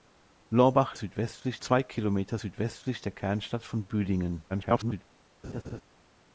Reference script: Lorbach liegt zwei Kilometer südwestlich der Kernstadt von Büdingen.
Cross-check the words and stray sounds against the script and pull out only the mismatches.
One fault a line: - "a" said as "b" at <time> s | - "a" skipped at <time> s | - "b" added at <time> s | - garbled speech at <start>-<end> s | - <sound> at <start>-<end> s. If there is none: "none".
- "liegt" said as "südwestlich" at 0.9 s
- garbled speech at 4.5-5.0 s
- laugh at 5.4-5.8 s